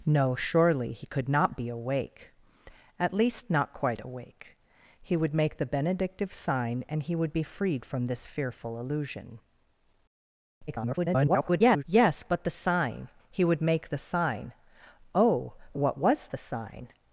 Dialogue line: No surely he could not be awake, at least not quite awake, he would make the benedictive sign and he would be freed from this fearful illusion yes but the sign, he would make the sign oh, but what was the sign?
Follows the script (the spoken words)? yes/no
no